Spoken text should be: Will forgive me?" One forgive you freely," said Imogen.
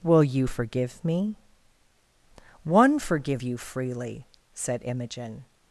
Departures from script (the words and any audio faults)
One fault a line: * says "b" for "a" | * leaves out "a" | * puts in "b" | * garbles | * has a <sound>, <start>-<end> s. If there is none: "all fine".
* puts in "you"